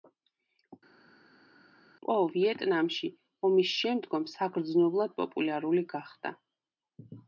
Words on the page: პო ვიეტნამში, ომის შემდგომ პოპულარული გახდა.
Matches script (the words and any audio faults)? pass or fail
fail